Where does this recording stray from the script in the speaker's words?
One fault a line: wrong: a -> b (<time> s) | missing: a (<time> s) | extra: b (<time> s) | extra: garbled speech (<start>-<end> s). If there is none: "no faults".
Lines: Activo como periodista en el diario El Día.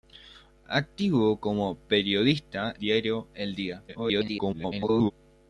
missing: en el (2.7 s)
extra: garbled speech (3.9-5.1 s)